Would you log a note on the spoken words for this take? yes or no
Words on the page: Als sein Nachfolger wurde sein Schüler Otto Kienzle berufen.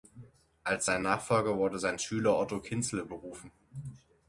no